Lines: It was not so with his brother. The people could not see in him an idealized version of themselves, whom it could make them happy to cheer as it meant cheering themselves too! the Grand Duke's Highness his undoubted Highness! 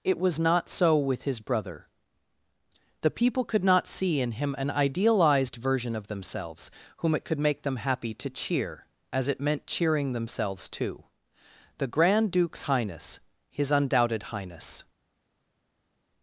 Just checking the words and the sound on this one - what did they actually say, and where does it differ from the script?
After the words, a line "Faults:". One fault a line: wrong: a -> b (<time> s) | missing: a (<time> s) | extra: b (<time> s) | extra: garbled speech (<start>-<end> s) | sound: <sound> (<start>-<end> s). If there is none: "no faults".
It was not so with his brother. The people could not see in him an idealized version of themselves, whom it could make them happy to cheer as it meant cheering themselves too! the Grand Duke's Highness his undoubted Highness!
Faults:
no faults